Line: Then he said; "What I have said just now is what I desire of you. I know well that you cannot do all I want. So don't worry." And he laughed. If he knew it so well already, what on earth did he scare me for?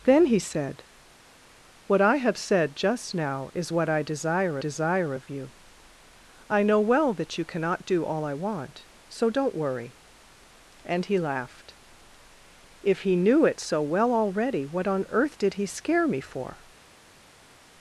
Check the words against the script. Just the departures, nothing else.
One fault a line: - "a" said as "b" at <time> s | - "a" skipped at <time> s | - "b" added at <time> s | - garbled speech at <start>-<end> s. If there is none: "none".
- "desire" added at 4.6 s